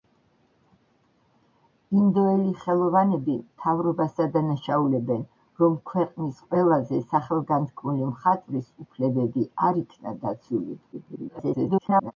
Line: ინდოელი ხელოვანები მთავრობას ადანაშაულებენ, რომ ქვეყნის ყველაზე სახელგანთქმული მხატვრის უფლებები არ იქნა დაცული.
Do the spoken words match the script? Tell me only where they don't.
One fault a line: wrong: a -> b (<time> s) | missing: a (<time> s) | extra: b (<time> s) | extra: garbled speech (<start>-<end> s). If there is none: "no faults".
extra: garbled speech (10.9-12.1 s)